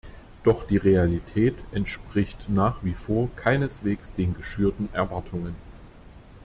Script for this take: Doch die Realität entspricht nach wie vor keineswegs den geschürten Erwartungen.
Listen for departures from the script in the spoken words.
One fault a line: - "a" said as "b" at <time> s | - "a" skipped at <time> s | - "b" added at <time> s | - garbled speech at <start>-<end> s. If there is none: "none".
none